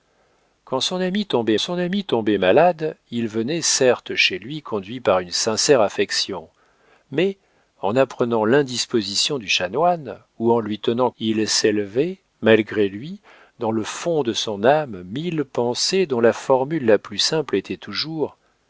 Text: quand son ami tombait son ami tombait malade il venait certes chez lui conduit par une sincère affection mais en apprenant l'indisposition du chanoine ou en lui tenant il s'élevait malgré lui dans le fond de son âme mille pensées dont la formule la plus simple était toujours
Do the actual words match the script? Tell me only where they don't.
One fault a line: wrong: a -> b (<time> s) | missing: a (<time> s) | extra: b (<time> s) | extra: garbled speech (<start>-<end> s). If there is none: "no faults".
no faults